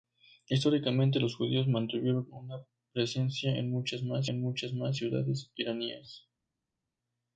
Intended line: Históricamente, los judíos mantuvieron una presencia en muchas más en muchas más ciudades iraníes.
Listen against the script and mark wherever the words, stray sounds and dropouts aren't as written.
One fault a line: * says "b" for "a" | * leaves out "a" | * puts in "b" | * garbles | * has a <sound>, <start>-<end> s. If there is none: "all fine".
all fine